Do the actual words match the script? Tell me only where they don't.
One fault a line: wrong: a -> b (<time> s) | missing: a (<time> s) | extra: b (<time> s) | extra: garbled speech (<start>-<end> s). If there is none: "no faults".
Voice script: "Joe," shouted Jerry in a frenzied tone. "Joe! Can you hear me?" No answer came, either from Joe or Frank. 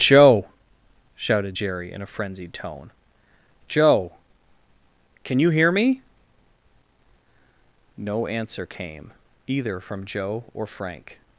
no faults